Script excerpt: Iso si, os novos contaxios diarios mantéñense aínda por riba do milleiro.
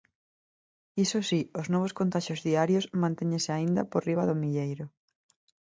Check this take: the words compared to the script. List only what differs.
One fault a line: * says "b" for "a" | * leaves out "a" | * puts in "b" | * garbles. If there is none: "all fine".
all fine